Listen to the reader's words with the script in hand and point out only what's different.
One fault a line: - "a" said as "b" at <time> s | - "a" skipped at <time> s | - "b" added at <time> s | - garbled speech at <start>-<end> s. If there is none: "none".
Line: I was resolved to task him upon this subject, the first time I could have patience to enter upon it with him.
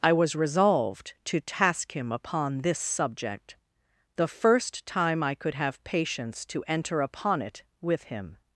none